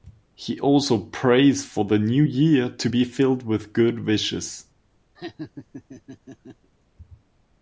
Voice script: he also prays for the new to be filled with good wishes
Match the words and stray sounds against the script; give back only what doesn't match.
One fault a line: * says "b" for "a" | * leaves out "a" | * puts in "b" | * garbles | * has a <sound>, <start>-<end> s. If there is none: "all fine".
* puts in "year"
* has a laugh, 5.2-6.7 s